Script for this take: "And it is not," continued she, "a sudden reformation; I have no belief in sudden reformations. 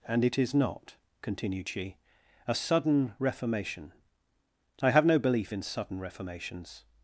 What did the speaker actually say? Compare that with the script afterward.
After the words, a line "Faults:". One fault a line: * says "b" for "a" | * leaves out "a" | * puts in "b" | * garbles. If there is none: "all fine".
"And it is not," continued she, "a sudden reformation; I have no belief in sudden reformations.
Faults:
all fine